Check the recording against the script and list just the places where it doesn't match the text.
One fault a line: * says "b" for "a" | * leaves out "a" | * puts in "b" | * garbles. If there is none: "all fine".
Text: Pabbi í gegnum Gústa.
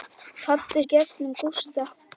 all fine